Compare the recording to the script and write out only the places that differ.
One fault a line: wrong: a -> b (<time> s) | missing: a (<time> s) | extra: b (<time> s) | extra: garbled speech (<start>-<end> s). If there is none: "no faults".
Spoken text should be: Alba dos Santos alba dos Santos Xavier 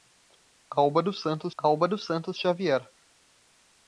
no faults